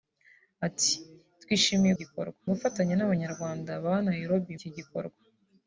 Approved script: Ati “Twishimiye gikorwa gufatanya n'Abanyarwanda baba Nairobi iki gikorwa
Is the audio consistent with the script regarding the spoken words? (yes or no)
yes